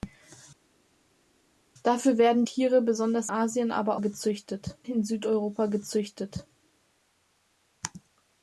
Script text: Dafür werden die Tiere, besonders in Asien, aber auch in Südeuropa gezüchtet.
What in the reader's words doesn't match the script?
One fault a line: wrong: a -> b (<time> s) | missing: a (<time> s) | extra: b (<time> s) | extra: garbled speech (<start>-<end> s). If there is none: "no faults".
missing: die (2.4 s)
missing: in (3.3 s)
wrong: auch -> gezüchtet (3.9 s)